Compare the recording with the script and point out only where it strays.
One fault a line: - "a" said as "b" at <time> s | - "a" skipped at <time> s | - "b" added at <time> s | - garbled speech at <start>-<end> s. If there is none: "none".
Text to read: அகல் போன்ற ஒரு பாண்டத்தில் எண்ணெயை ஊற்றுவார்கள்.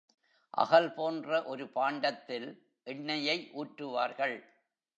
none